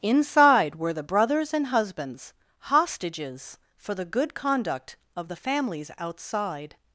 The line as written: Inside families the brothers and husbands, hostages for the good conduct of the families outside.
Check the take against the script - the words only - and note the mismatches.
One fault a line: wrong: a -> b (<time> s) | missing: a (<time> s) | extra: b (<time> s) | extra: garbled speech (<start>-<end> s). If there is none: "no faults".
wrong: families -> were (0.8 s)